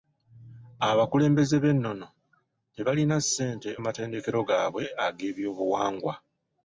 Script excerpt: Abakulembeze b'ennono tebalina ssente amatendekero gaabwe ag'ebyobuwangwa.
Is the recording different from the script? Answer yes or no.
no